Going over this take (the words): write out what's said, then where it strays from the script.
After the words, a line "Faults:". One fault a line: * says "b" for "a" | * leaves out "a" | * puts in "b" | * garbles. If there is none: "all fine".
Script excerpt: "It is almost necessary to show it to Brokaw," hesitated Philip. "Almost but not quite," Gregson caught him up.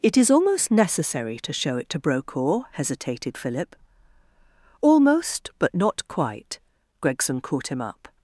"It is almost necessary to show it to Brokaw," hesitated Philip. "Almost but not quite," Gregson caught him up.
Faults:
all fine